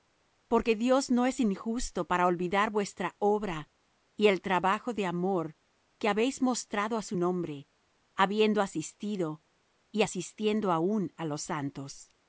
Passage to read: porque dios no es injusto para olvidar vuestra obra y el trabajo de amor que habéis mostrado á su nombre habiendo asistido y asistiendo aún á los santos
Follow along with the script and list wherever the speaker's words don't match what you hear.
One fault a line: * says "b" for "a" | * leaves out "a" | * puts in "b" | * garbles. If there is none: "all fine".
all fine